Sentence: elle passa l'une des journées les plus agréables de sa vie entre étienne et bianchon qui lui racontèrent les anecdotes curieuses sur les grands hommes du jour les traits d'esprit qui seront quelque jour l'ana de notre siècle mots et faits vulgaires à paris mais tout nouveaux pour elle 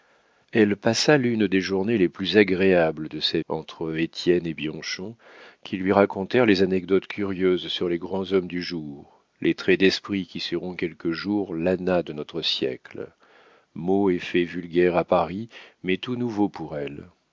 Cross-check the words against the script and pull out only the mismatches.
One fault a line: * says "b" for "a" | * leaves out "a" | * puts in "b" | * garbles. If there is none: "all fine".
* leaves out "vie"